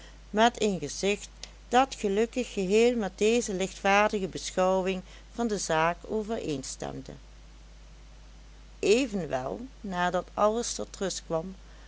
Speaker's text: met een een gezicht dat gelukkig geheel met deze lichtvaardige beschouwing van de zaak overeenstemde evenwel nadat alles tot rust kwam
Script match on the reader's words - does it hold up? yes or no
no